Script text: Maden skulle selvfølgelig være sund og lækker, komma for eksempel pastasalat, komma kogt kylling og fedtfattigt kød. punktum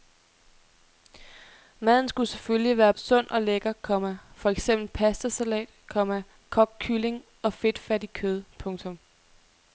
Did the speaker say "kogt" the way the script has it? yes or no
yes